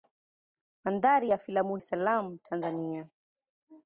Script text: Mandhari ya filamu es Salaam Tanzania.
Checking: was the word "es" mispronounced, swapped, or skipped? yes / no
no